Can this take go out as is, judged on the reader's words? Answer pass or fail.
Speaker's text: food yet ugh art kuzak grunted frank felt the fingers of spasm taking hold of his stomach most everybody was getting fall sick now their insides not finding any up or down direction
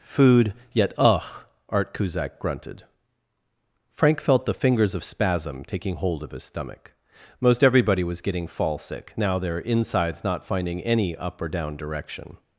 pass